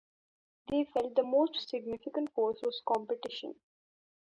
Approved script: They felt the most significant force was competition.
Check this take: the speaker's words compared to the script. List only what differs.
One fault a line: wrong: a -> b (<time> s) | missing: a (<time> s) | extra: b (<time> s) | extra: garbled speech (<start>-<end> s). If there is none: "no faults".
no faults